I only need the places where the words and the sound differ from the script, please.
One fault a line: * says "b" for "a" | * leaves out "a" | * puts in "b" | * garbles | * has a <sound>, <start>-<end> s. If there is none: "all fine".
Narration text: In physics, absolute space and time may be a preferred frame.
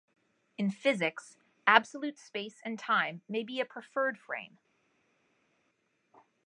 all fine